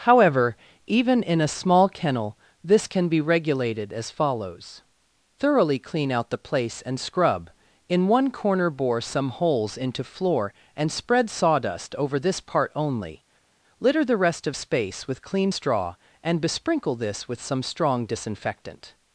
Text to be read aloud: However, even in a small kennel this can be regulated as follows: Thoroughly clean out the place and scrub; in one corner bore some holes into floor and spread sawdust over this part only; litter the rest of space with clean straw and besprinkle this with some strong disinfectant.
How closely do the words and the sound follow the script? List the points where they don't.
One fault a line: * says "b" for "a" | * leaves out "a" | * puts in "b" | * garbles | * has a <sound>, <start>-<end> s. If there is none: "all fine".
all fine